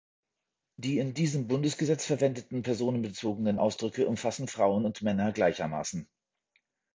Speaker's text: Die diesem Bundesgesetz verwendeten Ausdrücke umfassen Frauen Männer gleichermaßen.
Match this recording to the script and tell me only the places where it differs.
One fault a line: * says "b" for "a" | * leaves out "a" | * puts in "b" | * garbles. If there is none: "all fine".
* puts in "in"
* puts in "personenbezogenen"
* puts in "und"